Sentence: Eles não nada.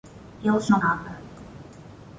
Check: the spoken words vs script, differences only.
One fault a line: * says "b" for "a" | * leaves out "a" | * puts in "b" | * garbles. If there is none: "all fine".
all fine